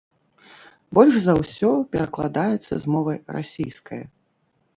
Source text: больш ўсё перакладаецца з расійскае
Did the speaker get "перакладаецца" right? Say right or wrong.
right